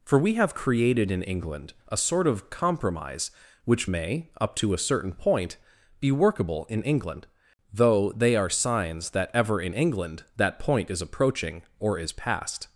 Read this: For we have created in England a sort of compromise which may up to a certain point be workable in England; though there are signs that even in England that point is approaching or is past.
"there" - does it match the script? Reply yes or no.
no